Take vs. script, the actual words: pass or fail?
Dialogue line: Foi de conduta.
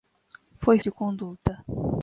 pass